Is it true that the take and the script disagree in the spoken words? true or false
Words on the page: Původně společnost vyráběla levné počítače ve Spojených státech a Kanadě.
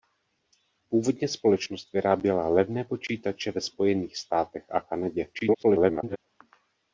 true